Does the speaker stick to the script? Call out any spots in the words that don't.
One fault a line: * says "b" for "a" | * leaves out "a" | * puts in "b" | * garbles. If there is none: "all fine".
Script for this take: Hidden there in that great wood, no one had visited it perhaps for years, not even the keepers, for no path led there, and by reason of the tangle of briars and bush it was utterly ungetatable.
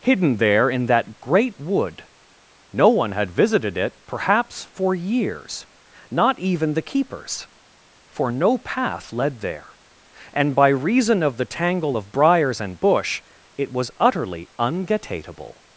all fine